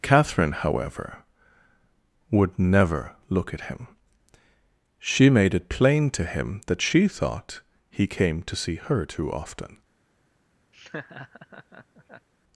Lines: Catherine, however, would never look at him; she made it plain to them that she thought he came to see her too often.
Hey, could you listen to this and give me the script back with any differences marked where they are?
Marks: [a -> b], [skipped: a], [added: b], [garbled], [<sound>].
Catherine, however, would never look at him; she made it plain to [them -> him] that she thought he came to see her too often. [laugh]